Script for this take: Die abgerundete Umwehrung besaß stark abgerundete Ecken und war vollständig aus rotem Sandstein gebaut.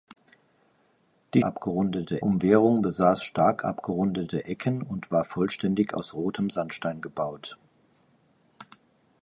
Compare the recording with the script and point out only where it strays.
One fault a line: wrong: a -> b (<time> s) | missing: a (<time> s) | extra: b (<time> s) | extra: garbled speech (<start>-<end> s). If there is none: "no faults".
no faults